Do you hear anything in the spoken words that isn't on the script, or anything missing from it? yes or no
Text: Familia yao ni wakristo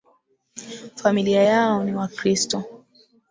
no